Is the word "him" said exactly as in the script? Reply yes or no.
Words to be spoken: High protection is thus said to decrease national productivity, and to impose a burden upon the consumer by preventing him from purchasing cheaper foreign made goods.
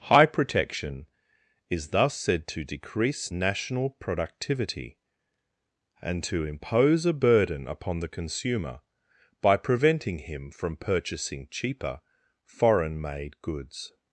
yes